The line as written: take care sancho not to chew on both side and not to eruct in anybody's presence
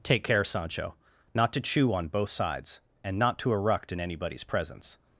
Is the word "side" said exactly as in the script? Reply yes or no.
no